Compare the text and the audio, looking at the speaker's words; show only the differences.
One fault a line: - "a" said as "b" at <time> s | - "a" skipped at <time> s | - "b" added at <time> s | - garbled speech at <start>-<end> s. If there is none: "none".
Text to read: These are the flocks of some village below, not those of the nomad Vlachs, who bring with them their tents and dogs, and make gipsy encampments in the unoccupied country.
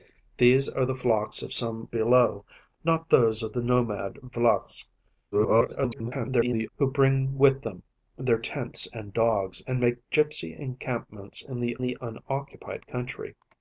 - "village" skipped at 1.9 s
- garbled speech at 5.3-6.7 s
- "the" added at 11.8 s